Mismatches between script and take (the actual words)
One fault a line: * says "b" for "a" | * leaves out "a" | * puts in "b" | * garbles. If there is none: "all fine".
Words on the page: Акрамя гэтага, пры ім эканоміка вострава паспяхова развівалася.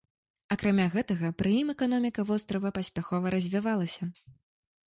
all fine